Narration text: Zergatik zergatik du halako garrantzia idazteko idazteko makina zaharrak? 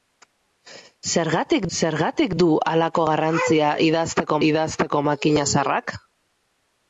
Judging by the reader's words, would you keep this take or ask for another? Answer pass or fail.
pass